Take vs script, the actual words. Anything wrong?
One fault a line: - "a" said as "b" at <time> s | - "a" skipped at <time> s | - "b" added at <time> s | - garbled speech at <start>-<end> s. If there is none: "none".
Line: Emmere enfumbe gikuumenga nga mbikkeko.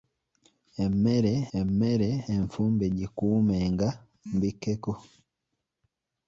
- "emmere" added at 1.6 s
- "nga" skipped at 3.9 s